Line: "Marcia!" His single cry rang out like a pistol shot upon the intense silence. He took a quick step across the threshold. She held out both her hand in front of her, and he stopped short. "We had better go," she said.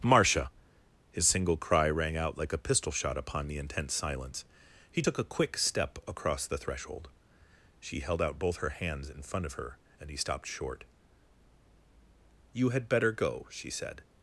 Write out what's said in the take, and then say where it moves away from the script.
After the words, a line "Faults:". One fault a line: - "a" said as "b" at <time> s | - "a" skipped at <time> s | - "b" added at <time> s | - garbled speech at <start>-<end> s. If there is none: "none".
"Marcia!" His single cry rang out like a pistol shot upon the intense silence. He took a quick step across the threshold. She held out both her hands in front of her, and he stopped short. "You had better go," she said.
Faults:
- "hand" said as "hands" at 8.7 s
- "We" said as "You" at 12.5 s